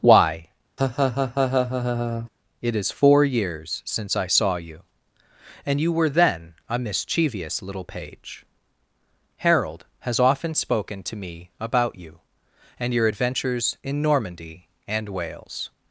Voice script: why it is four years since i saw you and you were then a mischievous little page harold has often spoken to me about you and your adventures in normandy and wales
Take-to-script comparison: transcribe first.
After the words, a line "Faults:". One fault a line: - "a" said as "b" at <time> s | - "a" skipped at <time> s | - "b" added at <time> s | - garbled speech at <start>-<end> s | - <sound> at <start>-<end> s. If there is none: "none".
why it is four years since i saw you and you were then a mischievous little page harold has often spoken to me about you and your adventures in normandy and wales
Faults:
- laugh at 0.8-2.3 s